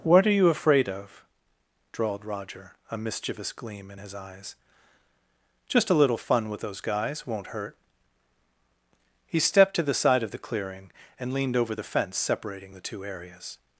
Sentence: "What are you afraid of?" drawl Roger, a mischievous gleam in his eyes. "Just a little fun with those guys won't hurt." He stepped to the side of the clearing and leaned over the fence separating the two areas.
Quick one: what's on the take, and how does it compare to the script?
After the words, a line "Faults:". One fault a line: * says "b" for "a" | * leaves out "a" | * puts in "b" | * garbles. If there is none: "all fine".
"What are you afraid of?" drawled Roger, a mischievous gleam in his eyes. "Just a little fun with those guys won't hurt." He stepped to the side of the clearing and leaned over the fence separating the two areas.
Faults:
* says "drawled" for "drawl"